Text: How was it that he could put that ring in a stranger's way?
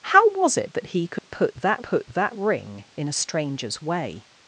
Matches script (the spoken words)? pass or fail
fail